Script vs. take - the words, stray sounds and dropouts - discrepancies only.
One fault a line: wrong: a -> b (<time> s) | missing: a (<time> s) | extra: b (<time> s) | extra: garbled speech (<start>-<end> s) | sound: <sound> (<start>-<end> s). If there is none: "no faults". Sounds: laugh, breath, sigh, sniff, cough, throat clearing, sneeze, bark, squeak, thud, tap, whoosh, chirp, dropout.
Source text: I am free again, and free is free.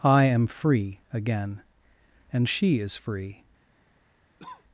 wrong: free -> she (2.5 s)
sound: cough (4.4-4.6 s)